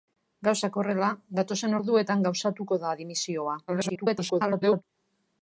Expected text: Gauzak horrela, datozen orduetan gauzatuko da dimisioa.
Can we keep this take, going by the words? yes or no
no